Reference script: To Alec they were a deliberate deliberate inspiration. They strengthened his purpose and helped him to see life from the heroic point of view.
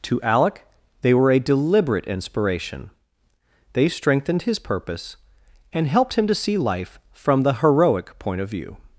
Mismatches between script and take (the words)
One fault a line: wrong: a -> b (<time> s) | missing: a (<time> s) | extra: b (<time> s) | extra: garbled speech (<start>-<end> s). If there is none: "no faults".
missing: deliberate (2.1 s)